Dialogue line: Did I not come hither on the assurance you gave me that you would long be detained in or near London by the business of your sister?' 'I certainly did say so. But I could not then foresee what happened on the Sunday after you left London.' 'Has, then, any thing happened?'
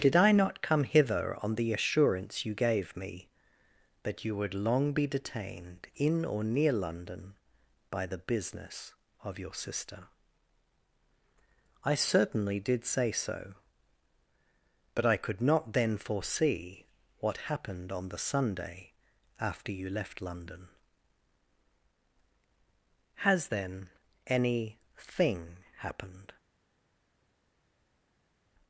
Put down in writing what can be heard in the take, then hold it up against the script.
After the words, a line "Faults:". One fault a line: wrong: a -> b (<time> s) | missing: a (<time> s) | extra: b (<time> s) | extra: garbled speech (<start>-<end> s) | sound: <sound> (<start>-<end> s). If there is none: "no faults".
Did I not come hither on the assurance you gave me that you would long be detained in or near London by the business of your sister?' 'I certainly did say so. But I could not then foresee what happened on the Sunday after you left London.' 'Has, then, any thing happened?'
Faults:
no faults